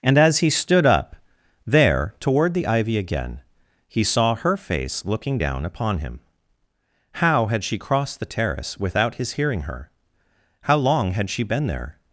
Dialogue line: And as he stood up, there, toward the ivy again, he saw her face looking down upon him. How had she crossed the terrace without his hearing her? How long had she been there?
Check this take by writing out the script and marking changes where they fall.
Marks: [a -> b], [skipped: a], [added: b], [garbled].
And as he stood up, there, toward the ivy again, he saw her face looking down upon him. How had she crossed the terrace without his hearing her? How long had she been there?